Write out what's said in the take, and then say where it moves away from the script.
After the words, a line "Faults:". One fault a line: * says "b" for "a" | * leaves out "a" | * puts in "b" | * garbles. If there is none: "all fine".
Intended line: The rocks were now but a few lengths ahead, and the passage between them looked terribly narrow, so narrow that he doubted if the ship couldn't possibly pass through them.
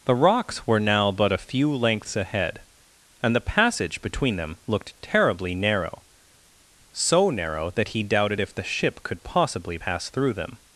The rocks were now but a few lengths ahead, and the passage between them looked terribly narrow, so narrow that he doubted if the ship could possibly pass through them.
Faults:
* says "could" for "couldn't"